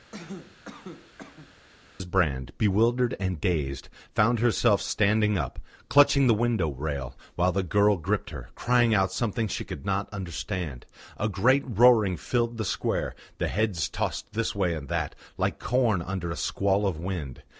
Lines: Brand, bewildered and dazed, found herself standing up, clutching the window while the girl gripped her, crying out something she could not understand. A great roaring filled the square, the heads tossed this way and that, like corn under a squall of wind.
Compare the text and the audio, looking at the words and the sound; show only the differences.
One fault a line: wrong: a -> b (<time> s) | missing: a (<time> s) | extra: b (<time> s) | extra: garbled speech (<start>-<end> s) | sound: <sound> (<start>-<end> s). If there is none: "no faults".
sound: cough (0.1-1.5 s)
extra: rail (6.7 s)